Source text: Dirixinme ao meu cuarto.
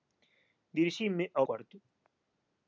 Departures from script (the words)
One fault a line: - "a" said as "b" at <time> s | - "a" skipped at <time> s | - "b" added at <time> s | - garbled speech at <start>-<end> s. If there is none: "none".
- "meu" skipped at 1.4 s